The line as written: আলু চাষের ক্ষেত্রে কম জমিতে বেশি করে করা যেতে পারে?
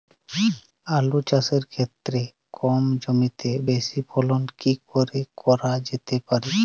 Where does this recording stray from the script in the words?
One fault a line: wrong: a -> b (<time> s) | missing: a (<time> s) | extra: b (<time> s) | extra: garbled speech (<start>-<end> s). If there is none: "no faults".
extra: ফলন কি (4.1 s)